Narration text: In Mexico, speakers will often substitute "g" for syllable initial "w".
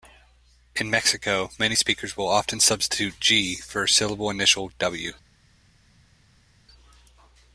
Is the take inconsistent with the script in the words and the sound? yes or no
yes